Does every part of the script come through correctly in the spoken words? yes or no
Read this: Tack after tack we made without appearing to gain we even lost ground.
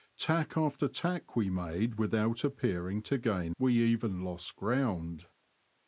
yes